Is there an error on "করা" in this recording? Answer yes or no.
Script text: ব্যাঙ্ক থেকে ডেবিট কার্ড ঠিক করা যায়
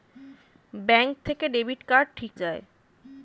yes